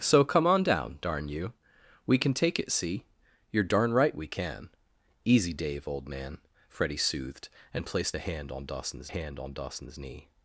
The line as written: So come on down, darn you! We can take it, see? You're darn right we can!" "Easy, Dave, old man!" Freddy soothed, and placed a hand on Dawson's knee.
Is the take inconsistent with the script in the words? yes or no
yes